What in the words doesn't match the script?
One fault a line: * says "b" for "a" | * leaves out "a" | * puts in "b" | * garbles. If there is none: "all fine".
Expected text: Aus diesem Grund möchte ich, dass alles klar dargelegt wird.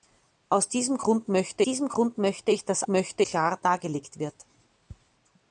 * puts in "diesem Grund möchte"
* says "möchte" for "alles"